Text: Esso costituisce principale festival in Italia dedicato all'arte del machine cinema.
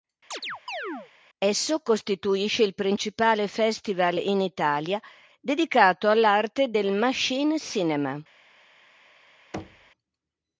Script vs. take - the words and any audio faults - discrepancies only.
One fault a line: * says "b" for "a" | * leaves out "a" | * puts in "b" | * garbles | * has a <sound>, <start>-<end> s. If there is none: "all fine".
* has a chirp, 0.3-1.1 s
* puts in "il"
* has a thud, 9.5-9.9 s